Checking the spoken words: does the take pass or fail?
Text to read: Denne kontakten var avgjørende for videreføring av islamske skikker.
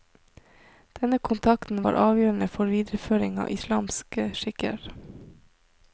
pass